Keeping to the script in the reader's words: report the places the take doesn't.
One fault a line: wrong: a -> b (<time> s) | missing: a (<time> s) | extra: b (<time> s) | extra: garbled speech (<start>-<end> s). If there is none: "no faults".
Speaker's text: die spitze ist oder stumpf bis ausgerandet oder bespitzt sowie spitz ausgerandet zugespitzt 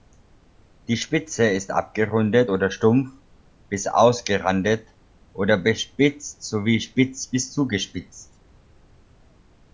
extra: abgerundet (1.7 s)
wrong: ausgerandet -> bis (7.3 s)